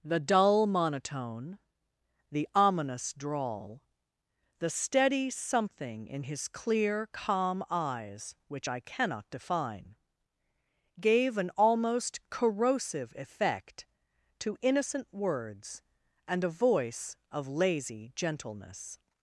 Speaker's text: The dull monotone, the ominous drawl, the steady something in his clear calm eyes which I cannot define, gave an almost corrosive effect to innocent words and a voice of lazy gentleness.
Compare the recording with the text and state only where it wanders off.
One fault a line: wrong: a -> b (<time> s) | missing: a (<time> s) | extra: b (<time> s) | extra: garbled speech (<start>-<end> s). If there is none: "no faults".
no faults